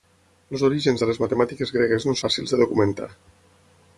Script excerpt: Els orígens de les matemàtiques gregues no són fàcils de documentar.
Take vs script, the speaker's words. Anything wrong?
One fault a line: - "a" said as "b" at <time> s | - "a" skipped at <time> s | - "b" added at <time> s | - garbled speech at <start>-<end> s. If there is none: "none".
- "són" skipped at 2.1 s